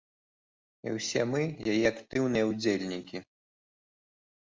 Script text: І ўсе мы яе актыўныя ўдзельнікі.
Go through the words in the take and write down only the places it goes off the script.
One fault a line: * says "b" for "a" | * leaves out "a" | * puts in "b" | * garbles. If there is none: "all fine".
all fine